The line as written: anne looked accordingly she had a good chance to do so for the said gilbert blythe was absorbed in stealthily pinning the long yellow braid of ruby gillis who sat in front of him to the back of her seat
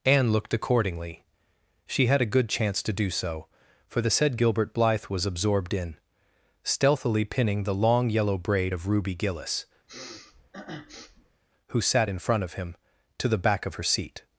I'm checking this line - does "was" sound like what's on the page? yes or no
yes